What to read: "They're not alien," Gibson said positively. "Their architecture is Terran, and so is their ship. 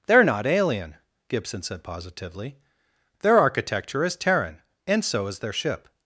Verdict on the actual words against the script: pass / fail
pass